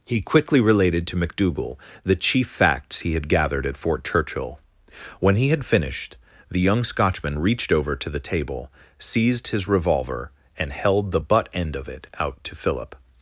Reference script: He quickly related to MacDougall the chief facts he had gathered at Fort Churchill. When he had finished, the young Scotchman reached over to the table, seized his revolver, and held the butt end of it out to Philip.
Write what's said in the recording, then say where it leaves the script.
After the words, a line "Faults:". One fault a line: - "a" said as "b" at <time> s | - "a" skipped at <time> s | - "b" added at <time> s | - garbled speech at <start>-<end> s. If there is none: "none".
He quickly related to MacDougall the chief facts he had gathered at Fort Churchill. When he had finished, the young Scotchman reached over to the table, seized his revolver, and held the butt end of it out to Philip.
Faults:
none